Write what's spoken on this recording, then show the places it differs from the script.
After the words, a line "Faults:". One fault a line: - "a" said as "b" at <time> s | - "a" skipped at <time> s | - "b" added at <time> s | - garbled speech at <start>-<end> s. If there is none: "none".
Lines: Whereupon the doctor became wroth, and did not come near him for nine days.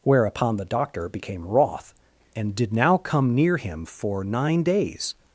Whereupon the doctor became wroth, and did now come near him for nine days.
Faults:
- "not" said as "now" at 2.7 s